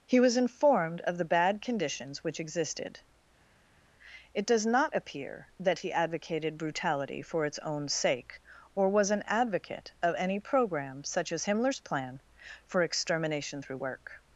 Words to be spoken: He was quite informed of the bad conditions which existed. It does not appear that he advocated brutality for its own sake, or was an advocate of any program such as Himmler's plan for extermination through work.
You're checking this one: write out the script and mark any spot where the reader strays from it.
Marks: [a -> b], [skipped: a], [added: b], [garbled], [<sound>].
He was [skipped: quite] informed of the bad conditions which existed. It does not appear that he advocated brutality for its own sake, or was an advocate of any program such as Himmler's plan for extermination through work.